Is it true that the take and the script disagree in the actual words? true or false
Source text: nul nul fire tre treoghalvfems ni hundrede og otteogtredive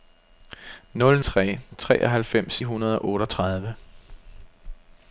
true